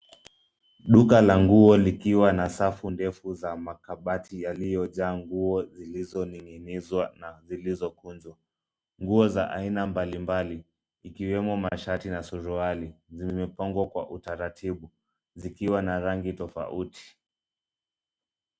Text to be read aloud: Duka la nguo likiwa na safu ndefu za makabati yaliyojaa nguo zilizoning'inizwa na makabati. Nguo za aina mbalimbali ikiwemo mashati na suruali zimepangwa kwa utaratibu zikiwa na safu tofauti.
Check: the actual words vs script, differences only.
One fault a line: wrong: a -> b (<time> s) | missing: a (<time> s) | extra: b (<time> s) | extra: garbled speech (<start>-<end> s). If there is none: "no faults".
wrong: makabati -> zilizokunjwa (7.4 s)
wrong: safu -> rangi (16.0 s)